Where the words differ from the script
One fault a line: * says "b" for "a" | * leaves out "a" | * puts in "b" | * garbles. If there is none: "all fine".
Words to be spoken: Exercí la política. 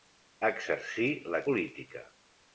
all fine